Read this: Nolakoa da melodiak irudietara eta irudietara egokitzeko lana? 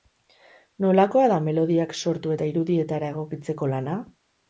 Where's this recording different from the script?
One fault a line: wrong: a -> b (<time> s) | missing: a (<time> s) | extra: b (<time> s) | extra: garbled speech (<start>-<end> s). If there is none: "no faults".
wrong: irudietara -> sortu (2.0 s)